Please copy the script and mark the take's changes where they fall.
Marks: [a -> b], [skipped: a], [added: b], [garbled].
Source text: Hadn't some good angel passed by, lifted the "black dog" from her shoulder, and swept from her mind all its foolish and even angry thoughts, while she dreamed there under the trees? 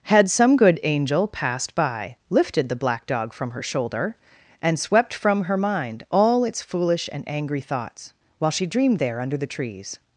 [Hadn't -> Had] some good angel passed by, lifted the "black dog" from her shoulder, and swept from her mind all its foolish and [skipped: even] angry thoughts, while she dreamed there under the trees?